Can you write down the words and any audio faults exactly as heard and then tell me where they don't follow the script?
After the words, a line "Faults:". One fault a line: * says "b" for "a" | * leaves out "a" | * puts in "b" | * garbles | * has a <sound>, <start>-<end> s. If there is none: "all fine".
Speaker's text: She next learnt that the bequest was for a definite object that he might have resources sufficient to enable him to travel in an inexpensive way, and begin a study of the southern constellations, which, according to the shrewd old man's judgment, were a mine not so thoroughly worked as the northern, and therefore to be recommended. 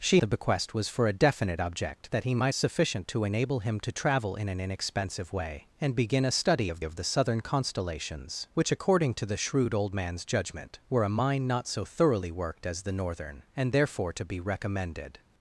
She the bequest was for a definite object that he might sufficient to enable him to travel in an inexpensive way, and begin a study of of the southern constellations, which, according to the shrewd old man's judgment, were a mine not so thoroughly worked as the northern, and therefore to be recommended.
Faults:
* leaves out "next learnt that"
* leaves out "have resources"
* puts in "of"